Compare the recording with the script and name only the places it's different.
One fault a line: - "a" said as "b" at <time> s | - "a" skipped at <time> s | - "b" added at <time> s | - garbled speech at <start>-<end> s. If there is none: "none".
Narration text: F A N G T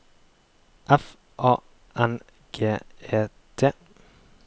- "E" added at 3.1 s